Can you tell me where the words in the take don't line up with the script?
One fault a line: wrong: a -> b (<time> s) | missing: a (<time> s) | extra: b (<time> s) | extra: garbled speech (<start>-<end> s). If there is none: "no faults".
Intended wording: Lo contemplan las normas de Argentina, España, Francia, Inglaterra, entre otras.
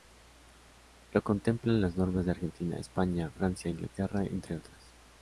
no faults